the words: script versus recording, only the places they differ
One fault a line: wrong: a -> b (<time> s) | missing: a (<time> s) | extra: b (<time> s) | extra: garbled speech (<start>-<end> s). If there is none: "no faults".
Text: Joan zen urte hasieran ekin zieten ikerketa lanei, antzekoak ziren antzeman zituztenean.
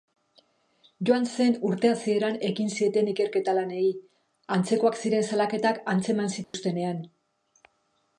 extra: salaketak (5.3 s)